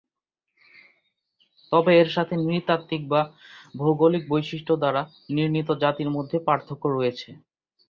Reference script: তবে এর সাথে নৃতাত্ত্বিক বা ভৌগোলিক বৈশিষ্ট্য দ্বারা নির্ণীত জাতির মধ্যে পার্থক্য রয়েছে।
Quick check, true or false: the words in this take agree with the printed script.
true